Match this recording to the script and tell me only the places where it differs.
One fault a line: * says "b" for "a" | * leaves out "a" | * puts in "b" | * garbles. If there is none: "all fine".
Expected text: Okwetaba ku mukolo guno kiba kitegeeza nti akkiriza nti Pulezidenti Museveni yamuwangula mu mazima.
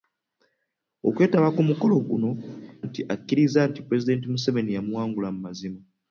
* leaves out "kiba kitegeeza"